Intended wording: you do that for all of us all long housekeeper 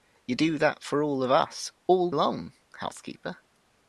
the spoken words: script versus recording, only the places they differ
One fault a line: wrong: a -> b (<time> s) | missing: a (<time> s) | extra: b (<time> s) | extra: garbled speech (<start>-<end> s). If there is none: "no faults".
no faults